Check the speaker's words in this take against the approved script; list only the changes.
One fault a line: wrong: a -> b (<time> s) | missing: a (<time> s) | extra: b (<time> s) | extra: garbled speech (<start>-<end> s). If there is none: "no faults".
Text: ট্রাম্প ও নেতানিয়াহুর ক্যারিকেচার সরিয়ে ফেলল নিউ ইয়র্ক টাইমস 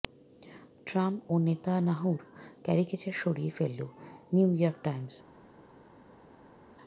no faults